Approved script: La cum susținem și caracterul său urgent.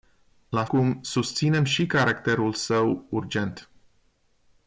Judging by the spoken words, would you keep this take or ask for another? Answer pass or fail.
pass